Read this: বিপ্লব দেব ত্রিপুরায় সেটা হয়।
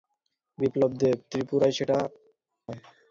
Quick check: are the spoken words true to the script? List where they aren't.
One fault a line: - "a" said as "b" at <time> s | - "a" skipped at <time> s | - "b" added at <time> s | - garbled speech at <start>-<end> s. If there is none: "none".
none